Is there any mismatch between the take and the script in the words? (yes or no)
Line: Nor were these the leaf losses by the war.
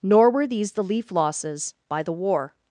no